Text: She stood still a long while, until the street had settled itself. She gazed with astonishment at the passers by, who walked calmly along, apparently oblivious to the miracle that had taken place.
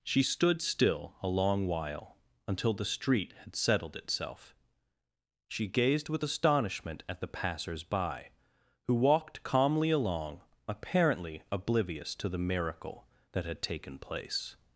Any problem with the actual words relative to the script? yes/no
no